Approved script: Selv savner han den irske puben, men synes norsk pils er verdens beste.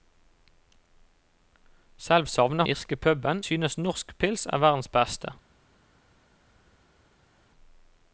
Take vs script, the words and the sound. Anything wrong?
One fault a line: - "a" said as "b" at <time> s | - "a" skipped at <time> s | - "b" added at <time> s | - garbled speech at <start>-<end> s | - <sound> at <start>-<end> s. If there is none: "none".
- "han den" skipped at 2.6 s
- "men" skipped at 3.4 s